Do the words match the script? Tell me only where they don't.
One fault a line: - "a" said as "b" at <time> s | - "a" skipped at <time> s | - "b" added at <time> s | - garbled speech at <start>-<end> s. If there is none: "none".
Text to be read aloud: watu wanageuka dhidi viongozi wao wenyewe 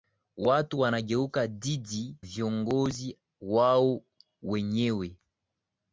none